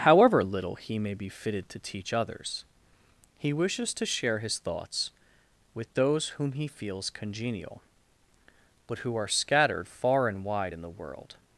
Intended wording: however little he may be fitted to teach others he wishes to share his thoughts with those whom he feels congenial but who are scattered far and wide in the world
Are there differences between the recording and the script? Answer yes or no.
no